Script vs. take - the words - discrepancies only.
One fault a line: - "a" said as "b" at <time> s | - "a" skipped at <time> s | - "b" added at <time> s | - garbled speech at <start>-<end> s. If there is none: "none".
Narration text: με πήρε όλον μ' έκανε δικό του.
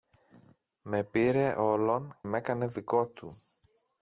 none